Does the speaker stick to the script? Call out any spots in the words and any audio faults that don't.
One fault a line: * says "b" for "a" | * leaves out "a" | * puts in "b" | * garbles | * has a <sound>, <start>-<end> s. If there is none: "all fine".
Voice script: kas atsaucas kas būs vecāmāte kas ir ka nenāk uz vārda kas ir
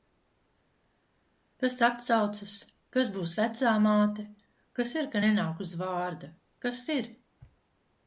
all fine